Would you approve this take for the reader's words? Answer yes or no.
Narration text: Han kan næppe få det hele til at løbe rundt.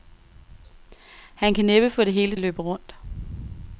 no